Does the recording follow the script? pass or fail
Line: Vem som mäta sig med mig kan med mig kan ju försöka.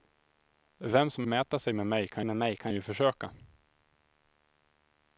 pass